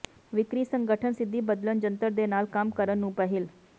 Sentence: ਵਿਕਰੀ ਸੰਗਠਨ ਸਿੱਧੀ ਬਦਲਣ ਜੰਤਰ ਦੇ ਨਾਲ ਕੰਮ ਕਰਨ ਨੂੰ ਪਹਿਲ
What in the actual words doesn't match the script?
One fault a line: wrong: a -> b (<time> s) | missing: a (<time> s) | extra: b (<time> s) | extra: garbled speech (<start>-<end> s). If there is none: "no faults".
no faults